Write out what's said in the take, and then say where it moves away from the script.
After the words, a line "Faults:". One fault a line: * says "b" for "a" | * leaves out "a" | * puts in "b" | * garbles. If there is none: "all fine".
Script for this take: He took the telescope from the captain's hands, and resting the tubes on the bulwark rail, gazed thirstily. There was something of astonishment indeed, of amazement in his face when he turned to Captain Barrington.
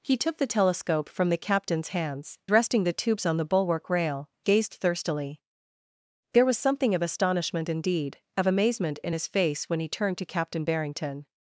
He took the telescope from the captain's hands, resting the tubes on the bulwark rail, gazed thirstily. There was something of astonishment indeed, of amazement in his face when he turned to Captain Barrington.
Faults:
* leaves out "and"